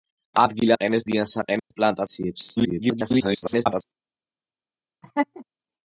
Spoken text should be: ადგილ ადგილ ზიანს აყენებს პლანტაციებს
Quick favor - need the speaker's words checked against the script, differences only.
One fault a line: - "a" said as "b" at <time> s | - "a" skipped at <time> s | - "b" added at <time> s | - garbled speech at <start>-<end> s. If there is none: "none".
- "ადგილ" said as "აყენებს" at 0.8 s
- garbled speech at 2.6-3.8 s